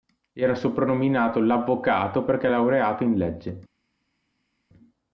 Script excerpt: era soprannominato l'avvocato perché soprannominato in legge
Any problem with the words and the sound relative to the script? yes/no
yes